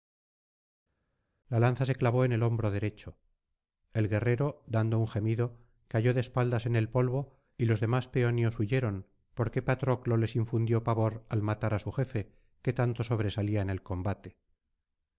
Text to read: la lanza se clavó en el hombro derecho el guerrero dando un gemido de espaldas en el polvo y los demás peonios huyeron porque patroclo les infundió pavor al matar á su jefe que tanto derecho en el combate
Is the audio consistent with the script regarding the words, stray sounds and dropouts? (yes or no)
no